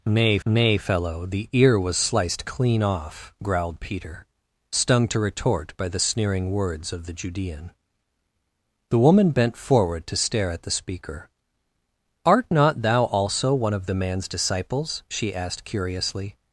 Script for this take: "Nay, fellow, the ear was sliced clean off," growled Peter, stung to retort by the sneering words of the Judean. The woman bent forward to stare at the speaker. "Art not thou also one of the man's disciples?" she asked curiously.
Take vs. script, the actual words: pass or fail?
fail